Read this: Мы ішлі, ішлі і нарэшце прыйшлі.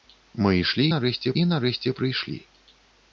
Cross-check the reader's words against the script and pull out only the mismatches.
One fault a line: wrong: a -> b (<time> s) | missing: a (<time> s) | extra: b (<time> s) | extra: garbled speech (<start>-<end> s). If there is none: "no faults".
wrong: ішлі -> нарэшце (0.9 s)